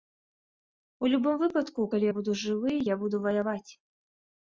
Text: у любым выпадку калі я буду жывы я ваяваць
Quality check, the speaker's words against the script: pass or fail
fail